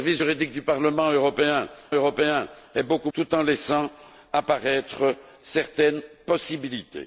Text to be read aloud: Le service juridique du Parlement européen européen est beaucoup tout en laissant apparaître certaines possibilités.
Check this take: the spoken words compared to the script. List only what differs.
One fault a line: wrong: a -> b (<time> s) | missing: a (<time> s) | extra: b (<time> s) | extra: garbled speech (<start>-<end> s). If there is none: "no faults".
no faults